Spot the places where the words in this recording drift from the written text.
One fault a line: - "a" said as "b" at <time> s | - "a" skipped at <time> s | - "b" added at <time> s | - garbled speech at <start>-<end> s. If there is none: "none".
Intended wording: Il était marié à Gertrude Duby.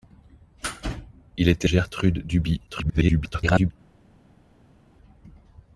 - "marié à" skipped at 1.7 s
- garbled speech at 2.7-3.7 s